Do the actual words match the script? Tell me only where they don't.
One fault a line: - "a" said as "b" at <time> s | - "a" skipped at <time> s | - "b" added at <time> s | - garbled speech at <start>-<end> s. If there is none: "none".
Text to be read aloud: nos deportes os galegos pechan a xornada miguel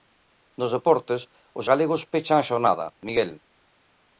none